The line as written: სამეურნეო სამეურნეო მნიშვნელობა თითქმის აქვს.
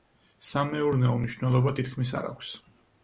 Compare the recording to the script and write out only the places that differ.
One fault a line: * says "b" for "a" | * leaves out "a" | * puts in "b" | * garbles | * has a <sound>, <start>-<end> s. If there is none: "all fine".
* leaves out "სამეურნეო"
* puts in "არ"